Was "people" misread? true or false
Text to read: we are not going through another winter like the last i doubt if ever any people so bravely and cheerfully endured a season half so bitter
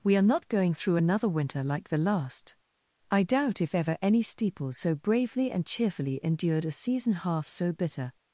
true